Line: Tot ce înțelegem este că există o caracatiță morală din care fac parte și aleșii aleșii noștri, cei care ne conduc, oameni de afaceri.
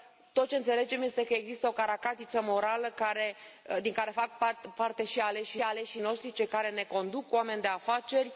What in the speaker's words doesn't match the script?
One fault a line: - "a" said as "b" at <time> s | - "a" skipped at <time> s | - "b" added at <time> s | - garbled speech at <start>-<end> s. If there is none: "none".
none